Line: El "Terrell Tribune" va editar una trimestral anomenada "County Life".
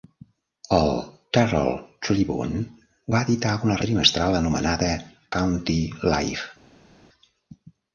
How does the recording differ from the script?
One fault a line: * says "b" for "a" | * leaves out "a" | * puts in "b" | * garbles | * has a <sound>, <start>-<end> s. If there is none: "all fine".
all fine